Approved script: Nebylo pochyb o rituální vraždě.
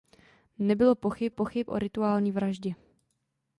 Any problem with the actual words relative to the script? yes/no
yes